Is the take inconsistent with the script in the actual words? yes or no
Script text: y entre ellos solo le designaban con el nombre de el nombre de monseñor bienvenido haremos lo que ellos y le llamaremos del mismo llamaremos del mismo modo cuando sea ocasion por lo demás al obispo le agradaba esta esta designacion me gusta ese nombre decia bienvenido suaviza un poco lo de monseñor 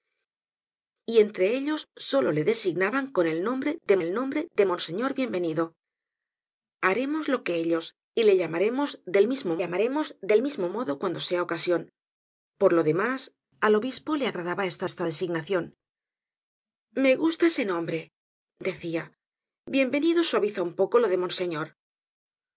no